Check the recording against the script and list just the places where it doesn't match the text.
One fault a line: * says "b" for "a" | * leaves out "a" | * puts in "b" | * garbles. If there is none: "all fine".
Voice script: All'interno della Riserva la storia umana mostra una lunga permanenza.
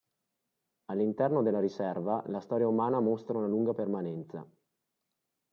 all fine